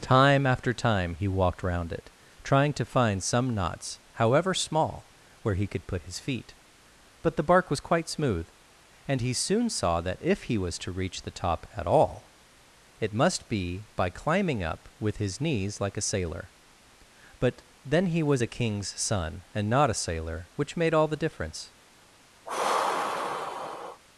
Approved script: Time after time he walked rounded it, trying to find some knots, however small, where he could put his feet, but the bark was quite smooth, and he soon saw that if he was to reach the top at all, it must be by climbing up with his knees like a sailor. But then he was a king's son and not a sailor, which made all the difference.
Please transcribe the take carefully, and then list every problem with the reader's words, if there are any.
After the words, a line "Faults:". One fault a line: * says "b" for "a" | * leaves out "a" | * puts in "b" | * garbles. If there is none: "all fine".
Time after time he walked round it, trying to find some knots, however small, where he could put his feet, but the bark was quite smooth, and he soon saw that if he was to reach the top at all, it must be by climbing up with his knees like a sailor. But then he was a king's son and not a sailor, which made all the difference.
Faults:
* says "round" for "rounded"